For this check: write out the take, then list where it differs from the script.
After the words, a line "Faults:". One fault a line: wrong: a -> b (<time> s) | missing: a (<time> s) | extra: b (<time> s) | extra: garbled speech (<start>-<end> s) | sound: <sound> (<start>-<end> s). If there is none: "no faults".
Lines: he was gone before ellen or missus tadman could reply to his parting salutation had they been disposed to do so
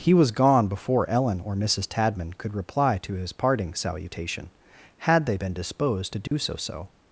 he was gone before ellen or missus tadman could reply to his parting salutation had they been disposed to do so so
Faults:
sound: dropout (6.3-6.3 s)
extra: so (6.6 s)